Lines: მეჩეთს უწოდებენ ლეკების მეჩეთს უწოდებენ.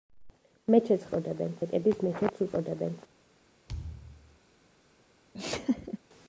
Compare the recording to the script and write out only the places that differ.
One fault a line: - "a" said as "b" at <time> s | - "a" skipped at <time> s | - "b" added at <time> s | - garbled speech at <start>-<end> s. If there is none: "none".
none